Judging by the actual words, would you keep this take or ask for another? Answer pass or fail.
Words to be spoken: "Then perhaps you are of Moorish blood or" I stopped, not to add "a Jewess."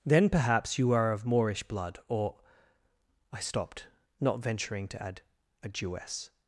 fail